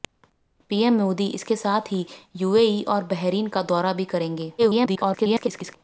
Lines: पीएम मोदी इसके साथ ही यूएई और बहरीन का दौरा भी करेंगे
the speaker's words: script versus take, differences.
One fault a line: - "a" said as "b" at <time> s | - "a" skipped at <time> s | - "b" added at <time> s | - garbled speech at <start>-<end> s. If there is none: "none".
- garbled speech at 4.6-5.8 s